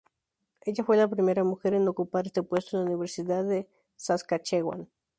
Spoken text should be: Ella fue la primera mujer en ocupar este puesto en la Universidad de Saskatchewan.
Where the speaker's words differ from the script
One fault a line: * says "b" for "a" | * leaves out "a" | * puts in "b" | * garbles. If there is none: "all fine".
all fine